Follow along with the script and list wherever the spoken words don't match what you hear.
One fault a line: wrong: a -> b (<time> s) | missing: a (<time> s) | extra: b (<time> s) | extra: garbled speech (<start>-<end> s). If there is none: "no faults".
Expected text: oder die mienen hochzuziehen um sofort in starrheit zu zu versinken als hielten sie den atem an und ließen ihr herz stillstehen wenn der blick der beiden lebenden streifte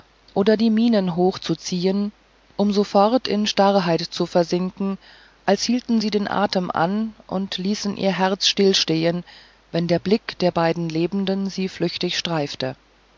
missing: zu (4.2 s)
extra: sie flüchtig (11.5 s)